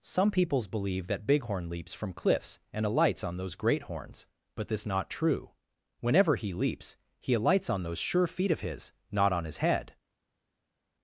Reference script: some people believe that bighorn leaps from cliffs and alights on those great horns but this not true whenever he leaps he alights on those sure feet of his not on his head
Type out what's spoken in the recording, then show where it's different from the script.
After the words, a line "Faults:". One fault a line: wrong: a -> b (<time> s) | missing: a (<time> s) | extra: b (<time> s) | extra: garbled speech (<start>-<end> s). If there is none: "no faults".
some peoples believe that bighorn leaps from cliffs and alights on those great horns but this not true whenever he leaps he alights on those sure feet of his not on his head
Faults:
wrong: people -> peoples (0.3 s)